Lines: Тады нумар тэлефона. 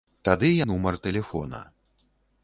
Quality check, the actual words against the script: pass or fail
pass